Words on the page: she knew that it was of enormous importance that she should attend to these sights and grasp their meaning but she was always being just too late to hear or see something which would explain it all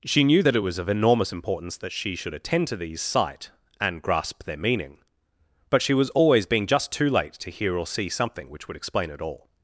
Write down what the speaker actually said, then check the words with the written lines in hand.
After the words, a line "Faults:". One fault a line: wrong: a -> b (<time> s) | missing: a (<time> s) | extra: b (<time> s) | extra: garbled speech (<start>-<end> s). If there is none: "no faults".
she knew that it was of enormous importance that she should attend to these sight and grasp their meaning but she was always being just too late to hear or see something which would explain it all
Faults:
wrong: sights -> sight (3.0 s)